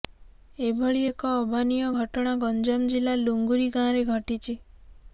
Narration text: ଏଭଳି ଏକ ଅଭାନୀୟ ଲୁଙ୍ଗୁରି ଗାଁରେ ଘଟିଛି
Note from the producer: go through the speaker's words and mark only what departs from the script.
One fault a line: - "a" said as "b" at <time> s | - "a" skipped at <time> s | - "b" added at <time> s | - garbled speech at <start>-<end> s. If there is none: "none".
- "ଘଟଣା ଗଞ୍ଜାମ ଜିଲ୍ଲା" added at 2.0 s